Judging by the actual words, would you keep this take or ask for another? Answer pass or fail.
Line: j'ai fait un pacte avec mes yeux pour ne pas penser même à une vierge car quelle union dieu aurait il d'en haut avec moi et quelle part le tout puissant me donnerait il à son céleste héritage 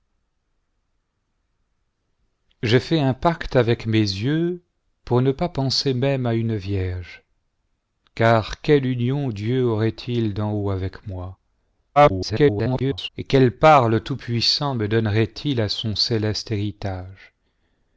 fail